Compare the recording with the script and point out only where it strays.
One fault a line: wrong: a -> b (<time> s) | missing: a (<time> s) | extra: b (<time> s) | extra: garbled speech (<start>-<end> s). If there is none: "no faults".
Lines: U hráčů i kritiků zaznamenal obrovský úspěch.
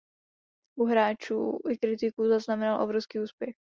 no faults